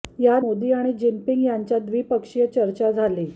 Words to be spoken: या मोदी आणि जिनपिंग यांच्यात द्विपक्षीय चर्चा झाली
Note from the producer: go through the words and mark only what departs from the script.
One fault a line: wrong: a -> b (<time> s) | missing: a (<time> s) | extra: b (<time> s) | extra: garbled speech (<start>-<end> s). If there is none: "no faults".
no faults